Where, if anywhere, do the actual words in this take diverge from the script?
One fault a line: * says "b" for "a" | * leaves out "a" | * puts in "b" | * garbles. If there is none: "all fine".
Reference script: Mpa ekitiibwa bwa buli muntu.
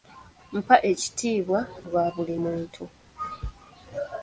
all fine